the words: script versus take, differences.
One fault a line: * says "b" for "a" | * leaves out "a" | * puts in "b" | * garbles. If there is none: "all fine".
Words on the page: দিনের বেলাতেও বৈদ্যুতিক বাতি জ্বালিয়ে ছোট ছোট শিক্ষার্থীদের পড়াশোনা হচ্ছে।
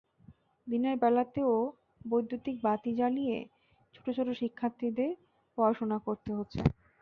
* puts in "করতে"